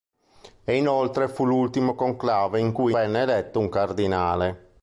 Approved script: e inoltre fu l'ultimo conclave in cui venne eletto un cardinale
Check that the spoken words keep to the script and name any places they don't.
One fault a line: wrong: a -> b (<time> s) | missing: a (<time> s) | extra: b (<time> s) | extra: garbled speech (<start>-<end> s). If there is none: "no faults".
no faults